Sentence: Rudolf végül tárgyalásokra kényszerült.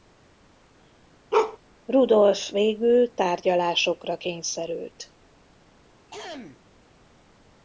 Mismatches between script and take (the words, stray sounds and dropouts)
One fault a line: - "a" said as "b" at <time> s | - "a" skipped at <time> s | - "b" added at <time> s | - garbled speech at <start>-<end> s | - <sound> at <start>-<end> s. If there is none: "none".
- bark at 1.3-1.6 s
- throat clearing at 6.1-6.6 s